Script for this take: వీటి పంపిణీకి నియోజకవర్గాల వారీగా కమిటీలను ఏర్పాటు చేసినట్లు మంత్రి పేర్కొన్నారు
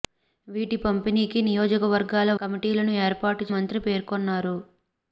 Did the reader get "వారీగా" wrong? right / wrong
wrong